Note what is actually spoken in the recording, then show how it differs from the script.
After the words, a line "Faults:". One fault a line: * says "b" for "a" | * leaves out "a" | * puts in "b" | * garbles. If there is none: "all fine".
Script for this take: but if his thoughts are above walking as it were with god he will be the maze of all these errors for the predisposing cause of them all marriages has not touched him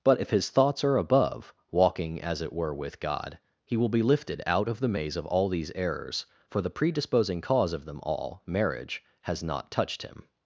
but if his thoughts are above walking as it were with god he will be lifted out of the maze of all these errors for the predisposing cause of them all marriage has not touched him
Faults:
* puts in "lifted out of"
* says "marriage" for "marriages"